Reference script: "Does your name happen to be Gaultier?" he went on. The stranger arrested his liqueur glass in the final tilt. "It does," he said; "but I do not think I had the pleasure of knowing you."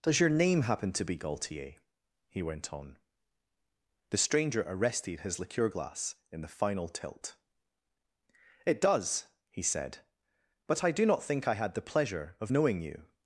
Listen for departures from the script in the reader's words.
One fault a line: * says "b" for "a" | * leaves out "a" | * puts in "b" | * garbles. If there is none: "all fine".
all fine